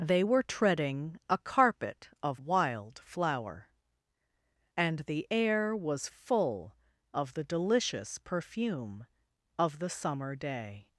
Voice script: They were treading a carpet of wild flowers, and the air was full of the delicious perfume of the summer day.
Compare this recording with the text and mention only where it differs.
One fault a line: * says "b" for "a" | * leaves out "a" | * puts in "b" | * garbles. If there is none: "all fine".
* says "flower" for "flowers"